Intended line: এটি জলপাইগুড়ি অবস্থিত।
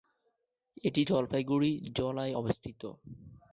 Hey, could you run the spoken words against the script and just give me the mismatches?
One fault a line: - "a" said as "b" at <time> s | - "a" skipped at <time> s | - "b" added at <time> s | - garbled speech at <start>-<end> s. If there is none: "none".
- "জলায়" added at 2.0 s